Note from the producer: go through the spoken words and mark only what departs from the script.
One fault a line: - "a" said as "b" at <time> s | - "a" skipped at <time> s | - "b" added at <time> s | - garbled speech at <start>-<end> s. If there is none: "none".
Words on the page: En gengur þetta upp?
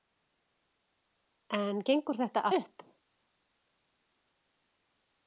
none